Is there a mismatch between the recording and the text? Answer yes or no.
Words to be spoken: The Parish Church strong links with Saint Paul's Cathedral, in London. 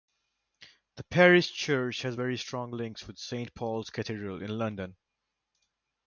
yes